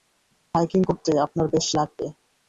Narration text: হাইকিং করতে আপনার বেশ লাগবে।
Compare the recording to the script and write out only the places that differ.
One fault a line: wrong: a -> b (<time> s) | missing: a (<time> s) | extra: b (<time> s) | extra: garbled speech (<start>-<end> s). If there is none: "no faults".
no faults